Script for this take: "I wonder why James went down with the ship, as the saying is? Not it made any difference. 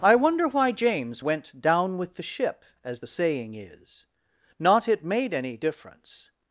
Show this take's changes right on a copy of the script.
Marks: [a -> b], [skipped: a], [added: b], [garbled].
"I wonder why James went down with the ship, as the saying is? Not it made any difference.